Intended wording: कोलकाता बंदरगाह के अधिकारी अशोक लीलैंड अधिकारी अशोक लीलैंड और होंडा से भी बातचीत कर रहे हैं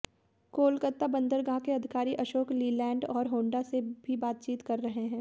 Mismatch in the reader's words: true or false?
true